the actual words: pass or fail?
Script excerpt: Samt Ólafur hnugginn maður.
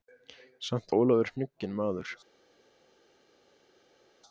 pass